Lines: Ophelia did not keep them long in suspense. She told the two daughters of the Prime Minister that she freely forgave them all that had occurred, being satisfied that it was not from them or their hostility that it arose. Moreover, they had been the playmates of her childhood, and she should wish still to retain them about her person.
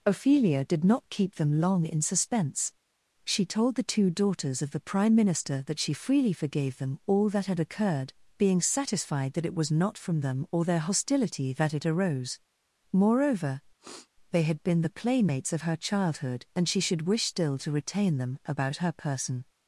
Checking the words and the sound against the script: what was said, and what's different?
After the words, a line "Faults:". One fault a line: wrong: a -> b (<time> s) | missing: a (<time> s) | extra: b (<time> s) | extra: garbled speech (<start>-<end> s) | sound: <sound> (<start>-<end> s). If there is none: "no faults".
Ophelia did not keep them long in suspense. She told the two daughters of the Prime Minister that she freely forgave them all that had occurred, being satisfied that it was not from them or their hostility that it arose. Moreover, they had been the playmates of her childhood, and she should wish still to retain them about her person.
Faults:
sound: sniff (13.8-14.1 s)